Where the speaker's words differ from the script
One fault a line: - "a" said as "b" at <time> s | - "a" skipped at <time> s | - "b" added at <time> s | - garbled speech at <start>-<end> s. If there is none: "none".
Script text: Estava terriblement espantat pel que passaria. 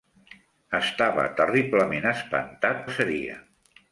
- "pel que" skipped at 2.9 s